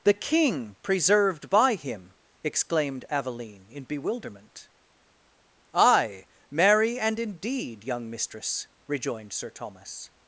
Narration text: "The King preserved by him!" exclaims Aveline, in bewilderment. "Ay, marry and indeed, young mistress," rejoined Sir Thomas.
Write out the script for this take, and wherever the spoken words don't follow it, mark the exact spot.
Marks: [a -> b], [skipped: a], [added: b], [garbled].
"The King preserved by him!" [exclaims -> exclaimed] Aveline, in bewilderment. "Ay, marry and indeed, young mistress," rejoined Sir Thomas.